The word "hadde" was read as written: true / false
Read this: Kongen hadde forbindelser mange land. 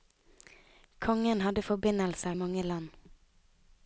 true